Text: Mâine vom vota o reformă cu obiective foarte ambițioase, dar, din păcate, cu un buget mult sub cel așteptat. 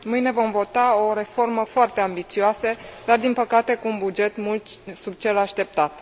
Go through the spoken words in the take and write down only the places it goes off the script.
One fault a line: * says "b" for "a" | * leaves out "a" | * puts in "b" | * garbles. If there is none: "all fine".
* leaves out "cu obiective"